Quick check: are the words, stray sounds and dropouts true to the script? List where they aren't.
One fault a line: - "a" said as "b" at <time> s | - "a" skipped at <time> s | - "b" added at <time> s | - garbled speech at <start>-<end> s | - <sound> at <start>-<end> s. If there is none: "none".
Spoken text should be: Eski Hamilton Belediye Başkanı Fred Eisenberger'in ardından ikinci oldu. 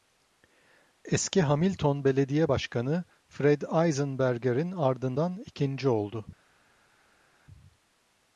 none